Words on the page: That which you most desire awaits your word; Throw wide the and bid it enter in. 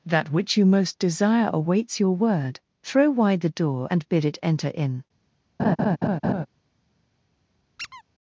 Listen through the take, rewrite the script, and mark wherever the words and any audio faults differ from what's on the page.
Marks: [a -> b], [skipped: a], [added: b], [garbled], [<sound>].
That which you most desire awaits your word; Throw wide the [added: door] and bid it enter in. [laugh] [squeak]